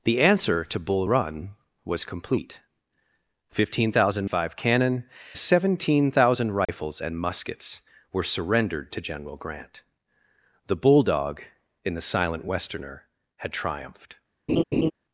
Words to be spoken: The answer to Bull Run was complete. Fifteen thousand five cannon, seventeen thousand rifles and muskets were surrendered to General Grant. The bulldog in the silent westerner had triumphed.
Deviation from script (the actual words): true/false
false